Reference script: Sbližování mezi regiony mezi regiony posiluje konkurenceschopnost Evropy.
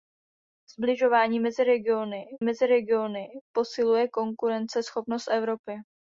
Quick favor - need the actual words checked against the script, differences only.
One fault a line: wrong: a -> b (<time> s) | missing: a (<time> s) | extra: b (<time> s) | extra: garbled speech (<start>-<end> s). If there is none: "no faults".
no faults